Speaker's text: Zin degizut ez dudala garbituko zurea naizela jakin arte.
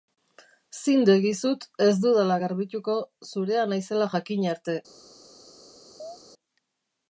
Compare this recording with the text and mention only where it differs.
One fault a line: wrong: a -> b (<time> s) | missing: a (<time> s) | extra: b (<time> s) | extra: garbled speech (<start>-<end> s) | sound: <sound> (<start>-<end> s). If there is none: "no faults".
sound: chirp (6.0-6.2 s)